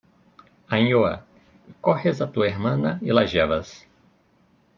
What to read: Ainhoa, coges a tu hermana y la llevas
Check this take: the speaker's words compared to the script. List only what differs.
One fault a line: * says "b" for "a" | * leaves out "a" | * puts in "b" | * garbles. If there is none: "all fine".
all fine